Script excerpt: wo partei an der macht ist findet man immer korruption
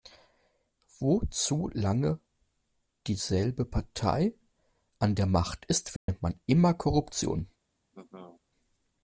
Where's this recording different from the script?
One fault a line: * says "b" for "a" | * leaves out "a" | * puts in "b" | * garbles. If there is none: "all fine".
* puts in "zu lange dieselbe"